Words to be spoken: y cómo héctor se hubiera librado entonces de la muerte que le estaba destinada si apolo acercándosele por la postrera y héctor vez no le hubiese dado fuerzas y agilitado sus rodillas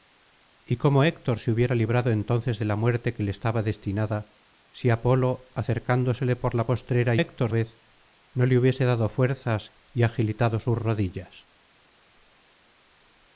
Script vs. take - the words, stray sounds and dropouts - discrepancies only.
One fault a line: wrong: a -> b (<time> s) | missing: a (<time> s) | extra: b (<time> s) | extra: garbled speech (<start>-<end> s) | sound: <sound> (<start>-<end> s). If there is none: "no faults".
no faults